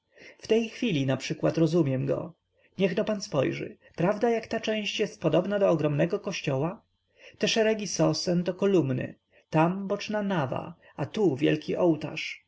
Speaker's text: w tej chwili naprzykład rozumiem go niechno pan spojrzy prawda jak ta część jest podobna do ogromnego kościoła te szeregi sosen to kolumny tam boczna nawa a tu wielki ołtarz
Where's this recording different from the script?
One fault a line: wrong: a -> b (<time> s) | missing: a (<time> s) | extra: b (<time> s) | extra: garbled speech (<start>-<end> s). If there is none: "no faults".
no faults